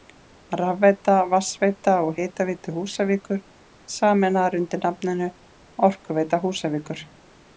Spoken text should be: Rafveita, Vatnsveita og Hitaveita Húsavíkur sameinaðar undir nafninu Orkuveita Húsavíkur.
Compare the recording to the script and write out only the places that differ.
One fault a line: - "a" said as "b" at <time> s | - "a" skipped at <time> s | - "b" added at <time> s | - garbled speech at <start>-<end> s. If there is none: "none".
none